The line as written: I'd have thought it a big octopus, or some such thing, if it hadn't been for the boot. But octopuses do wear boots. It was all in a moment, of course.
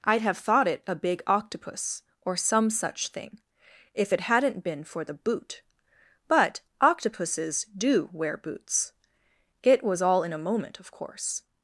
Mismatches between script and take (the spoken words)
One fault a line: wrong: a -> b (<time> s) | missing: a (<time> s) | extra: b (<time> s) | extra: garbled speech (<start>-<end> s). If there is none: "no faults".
no faults